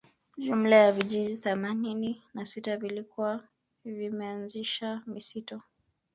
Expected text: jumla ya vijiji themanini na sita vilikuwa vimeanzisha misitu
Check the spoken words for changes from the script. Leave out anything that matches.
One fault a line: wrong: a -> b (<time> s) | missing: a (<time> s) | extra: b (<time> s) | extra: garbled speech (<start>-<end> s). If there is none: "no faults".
no faults